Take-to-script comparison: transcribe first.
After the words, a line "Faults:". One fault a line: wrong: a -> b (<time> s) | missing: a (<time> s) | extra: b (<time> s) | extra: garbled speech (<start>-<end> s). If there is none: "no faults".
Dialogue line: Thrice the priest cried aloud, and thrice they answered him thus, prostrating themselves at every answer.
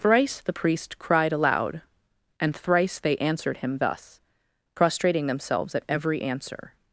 Thrice the priest cried aloud, and thrice they answered him thus, prostrating themselves at every answer.
Faults:
no faults